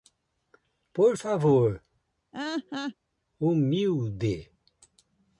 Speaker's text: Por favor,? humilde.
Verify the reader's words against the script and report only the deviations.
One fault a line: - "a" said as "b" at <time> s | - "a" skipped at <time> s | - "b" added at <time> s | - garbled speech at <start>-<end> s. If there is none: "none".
none